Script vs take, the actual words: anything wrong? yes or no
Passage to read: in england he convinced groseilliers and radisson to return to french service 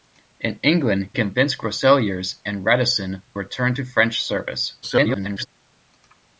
yes